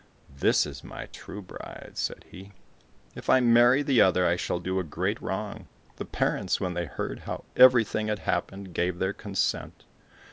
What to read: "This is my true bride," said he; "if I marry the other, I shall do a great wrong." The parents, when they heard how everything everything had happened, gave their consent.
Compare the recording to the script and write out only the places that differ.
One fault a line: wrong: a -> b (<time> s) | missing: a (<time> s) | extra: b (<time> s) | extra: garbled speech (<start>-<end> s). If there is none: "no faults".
missing: everything (8.1 s)